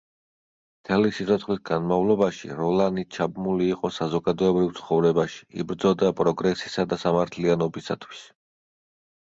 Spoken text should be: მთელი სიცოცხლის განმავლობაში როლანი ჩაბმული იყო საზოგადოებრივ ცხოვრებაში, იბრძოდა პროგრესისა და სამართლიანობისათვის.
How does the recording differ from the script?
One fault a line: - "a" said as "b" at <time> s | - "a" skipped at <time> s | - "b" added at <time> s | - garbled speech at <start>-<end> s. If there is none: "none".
none